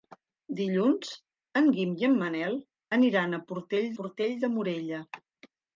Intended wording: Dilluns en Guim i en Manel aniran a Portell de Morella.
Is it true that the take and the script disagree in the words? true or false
true